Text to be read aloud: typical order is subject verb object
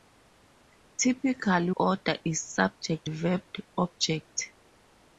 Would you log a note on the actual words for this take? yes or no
no